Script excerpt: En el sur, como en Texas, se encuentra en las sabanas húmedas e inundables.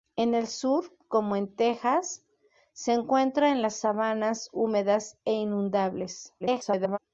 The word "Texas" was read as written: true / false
true